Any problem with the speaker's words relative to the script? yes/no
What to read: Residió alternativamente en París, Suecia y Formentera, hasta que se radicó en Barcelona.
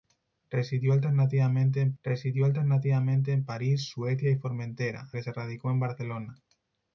yes